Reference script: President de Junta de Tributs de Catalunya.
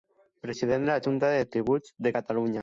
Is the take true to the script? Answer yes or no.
no